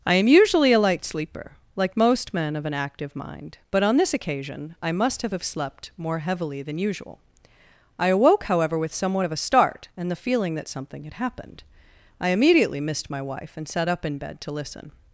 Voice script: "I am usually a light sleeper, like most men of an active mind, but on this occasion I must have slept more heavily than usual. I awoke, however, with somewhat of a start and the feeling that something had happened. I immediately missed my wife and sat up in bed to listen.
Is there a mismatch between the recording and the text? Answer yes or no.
yes